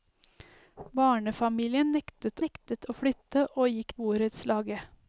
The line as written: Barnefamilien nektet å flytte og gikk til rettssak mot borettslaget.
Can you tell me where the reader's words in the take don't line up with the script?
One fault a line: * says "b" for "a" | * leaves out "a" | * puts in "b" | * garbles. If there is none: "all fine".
* puts in "nektet"
* leaves out "til rettssak mot"